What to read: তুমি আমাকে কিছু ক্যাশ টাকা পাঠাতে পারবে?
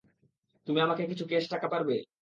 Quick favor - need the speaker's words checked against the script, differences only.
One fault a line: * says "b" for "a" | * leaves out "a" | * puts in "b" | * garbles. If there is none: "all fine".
* leaves out "পাঠাতে"